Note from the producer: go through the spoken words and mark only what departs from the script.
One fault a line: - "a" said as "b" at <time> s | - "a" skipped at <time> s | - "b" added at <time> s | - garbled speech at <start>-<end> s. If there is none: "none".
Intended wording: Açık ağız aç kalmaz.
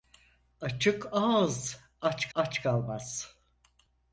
- "aç" added at 2.3 s